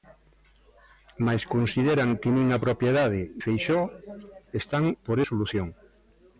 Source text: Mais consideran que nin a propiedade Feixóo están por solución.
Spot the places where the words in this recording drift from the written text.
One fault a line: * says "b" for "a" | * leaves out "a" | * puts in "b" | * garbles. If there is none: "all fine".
all fine